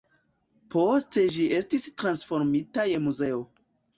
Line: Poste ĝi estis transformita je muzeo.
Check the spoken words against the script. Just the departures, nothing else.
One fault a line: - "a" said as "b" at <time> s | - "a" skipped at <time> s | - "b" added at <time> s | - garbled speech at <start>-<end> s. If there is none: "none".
none